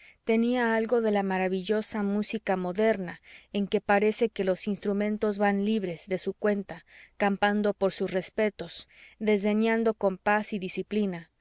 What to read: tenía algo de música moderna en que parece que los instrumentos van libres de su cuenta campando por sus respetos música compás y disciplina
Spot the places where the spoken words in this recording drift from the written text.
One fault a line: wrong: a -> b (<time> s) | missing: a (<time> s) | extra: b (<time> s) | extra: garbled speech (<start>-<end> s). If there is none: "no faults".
extra: la maravillosa (1.1 s)
wrong: música -> desdeñando (9.2 s)